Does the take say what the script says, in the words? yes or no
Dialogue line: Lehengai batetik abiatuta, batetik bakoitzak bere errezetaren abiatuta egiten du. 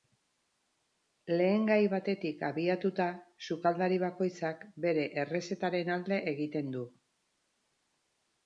no